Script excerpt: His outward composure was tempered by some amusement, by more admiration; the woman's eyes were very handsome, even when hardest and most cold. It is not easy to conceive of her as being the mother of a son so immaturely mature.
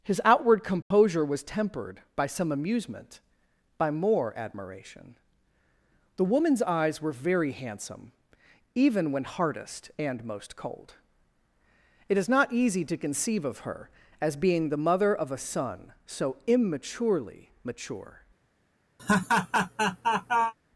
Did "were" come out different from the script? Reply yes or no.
no